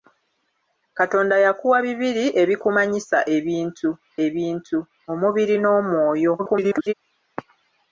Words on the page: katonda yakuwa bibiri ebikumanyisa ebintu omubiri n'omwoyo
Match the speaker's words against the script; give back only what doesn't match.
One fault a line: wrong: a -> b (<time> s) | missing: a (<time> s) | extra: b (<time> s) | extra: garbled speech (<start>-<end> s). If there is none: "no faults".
extra: ebintu (4.3 s)
extra: garbled speech (6.4-6.9 s)